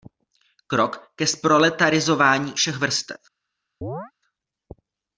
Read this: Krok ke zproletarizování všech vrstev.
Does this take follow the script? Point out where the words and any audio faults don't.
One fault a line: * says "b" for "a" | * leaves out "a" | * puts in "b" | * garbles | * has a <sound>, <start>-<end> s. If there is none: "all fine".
* has a chirp, 3.8-4.1 s